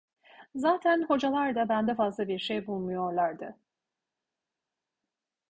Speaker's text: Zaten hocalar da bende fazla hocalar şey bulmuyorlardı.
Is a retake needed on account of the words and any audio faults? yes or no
yes